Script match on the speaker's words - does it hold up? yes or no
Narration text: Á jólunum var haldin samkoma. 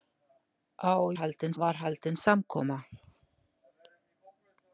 no